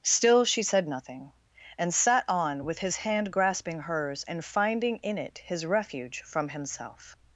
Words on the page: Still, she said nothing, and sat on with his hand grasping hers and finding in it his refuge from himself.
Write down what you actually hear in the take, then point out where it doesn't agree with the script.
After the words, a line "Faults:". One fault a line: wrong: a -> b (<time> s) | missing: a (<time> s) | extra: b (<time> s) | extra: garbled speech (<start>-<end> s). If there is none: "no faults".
Still, she said nothing, and sat on with his hand grasping hers and finding in it his refuge from himself.
Faults:
no faults